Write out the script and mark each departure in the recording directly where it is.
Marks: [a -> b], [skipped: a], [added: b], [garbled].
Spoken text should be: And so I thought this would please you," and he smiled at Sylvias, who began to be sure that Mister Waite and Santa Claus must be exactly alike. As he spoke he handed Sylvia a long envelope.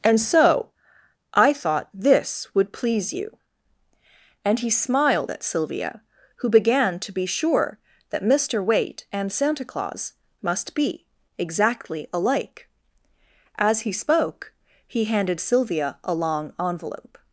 And so I thought this would please you," and he smiled at [Sylvias, -> Sylvia] who began to be sure that Mister Waite and Santa Claus must be exactly alike. As he spoke he handed Sylvia a long envelope.